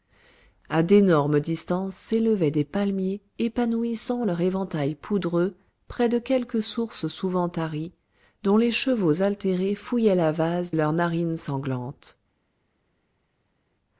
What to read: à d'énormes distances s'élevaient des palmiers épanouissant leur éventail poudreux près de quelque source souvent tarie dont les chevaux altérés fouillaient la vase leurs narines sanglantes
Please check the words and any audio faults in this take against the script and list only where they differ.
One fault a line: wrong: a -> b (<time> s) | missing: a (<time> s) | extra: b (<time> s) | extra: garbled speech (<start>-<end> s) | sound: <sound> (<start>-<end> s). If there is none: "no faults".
no faults